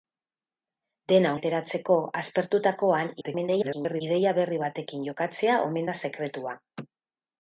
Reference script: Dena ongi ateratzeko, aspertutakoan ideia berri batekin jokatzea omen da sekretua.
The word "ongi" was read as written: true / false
false